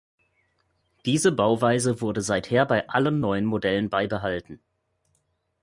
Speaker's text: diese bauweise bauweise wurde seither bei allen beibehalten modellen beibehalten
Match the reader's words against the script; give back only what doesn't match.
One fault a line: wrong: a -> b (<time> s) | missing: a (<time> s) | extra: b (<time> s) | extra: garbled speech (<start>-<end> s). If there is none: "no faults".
missing: bauweise (2.0 s)
wrong: beibehalten -> neuen (3.2 s)